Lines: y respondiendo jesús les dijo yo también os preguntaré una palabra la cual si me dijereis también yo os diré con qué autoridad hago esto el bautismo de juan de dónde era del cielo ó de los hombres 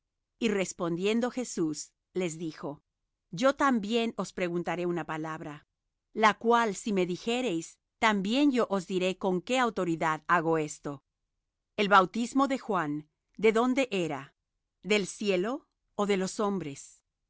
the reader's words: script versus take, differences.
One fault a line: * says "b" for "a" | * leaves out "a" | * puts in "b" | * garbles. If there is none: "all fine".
all fine